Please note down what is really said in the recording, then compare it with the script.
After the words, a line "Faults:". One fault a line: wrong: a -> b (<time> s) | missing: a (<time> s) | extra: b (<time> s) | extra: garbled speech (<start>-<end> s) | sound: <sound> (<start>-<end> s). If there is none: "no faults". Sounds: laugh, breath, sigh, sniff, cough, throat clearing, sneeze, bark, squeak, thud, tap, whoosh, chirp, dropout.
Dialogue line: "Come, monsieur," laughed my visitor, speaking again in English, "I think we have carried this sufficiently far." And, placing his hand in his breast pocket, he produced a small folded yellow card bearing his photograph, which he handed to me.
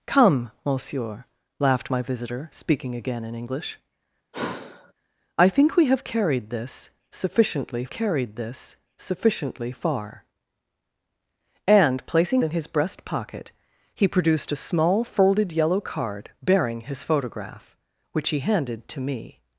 "Come, monsieur," laughed my visitor, speaking again in English, "I think we have carried this sufficiently carried this sufficiently far." And, placing in his breast pocket, he produced a small folded yellow card bearing his photograph, which he handed to me.
Faults:
sound: sigh (4.3-4.9 s)
extra: carried this sufficiently (7.9 s)
missing: his hand (12.4 s)